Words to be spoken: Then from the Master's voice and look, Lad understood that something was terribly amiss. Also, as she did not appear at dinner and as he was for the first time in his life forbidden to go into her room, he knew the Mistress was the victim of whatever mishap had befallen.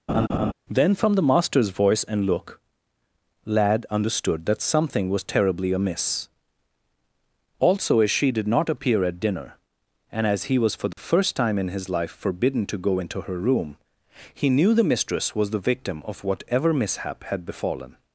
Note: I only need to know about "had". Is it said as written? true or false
true